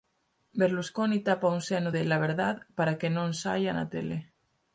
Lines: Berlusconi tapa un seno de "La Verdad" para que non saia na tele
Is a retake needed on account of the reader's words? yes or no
no